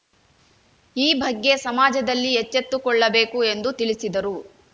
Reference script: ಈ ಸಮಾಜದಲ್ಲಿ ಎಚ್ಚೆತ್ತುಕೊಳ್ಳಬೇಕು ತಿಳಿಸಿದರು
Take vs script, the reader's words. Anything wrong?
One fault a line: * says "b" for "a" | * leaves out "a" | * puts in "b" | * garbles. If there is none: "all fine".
* puts in "ಬಗ್ಗೆ"
* puts in "ಎಂದು"